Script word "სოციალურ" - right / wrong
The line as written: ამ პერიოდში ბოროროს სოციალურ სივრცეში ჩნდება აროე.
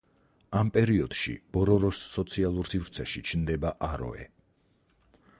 right